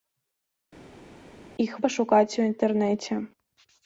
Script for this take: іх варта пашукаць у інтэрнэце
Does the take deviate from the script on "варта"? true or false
true